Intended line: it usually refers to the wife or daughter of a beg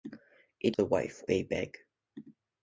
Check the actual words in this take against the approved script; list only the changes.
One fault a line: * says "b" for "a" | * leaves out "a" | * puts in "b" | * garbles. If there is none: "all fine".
* leaves out "usually refers"
* leaves out "or daughter of"